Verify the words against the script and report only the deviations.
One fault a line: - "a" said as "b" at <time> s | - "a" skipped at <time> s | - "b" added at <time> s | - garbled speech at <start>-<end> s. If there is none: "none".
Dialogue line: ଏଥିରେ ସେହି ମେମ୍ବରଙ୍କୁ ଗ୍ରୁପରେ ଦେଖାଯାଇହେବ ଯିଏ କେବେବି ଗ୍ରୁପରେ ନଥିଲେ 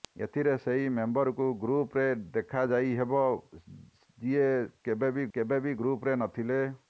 - "କେବେବି" added at 5.3 s